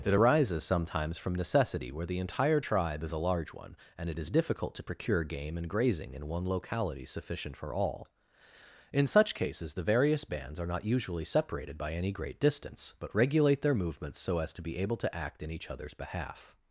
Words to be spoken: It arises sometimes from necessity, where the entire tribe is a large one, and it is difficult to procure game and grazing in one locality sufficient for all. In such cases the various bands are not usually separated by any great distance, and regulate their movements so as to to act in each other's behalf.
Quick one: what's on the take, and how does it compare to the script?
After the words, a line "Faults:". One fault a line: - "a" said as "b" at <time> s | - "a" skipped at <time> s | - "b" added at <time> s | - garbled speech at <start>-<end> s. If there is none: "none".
It arises sometimes from necessity, where the entire tribe is a large one, and it is difficult to procure game and grazing in one locality sufficient for all. In such cases the various bands are not usually separated by any great distance, but regulate their movements so as to be able to act in each other's behalf.
Faults:
- "and" said as "but" at 13.0 s
- "be able" added at 14.6 s